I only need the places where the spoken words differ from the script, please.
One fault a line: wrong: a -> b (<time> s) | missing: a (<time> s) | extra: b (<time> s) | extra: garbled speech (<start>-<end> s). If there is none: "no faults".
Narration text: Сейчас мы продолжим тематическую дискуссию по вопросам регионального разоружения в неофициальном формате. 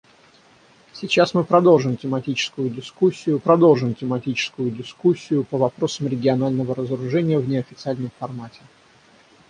extra: продолжим тематическую дискуссию (3.4 s)